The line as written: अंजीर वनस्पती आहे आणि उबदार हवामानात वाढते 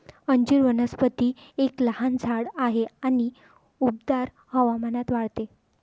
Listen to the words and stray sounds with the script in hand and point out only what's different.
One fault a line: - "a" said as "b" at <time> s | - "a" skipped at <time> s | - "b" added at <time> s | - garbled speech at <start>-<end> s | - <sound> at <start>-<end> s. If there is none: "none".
- "एक लहान झाड" added at 1.6 s